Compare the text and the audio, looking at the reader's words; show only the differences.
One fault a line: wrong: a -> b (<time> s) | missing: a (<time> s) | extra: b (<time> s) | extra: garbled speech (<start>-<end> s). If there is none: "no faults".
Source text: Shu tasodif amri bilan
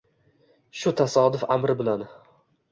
no faults